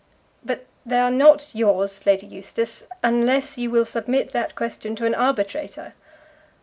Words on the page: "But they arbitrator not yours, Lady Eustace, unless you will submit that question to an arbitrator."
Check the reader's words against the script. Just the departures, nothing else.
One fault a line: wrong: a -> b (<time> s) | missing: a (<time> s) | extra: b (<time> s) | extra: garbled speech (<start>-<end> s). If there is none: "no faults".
wrong: arbitrator -> are (1.0 s)